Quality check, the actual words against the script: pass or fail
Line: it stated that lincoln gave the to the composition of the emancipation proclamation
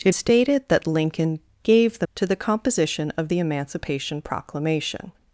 pass